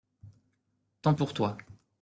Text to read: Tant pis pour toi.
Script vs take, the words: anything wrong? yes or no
yes